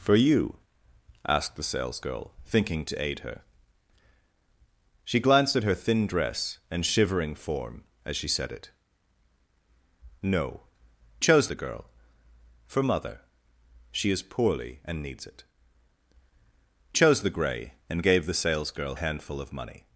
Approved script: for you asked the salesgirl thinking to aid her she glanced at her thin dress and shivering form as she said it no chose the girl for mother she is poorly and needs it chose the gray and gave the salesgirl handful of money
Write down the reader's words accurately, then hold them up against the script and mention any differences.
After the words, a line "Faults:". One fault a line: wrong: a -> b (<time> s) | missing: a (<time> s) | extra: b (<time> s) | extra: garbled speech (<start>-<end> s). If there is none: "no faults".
for you asked the salesgirl thinking to aid her she glanced at her thin dress and shivering form as she said it no chose the girl for mother she is poorly and needs it chose the gray and gave the salesgirl handful of money
Faults:
no faults